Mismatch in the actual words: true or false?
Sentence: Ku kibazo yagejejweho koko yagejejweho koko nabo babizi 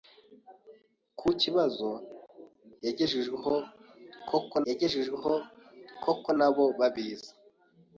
false